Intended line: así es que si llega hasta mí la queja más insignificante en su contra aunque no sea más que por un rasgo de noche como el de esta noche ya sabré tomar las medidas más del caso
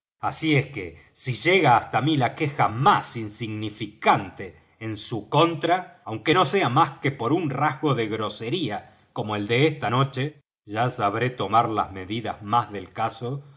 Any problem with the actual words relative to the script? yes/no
yes